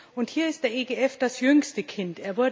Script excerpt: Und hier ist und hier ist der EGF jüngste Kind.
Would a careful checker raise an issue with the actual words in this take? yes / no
yes